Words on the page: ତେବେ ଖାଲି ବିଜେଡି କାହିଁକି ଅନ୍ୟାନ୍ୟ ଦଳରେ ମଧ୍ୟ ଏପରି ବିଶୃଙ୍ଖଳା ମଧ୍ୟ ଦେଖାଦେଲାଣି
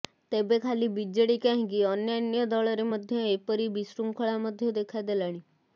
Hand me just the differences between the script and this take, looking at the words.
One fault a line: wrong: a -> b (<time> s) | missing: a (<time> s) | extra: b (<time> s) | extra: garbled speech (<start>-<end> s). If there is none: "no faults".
no faults